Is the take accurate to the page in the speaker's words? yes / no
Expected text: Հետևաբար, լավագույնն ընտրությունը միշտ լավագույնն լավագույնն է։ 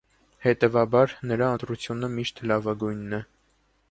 no